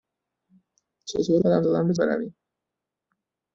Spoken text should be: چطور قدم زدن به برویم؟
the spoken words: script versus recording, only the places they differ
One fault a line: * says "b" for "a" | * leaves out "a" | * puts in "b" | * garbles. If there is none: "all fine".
all fine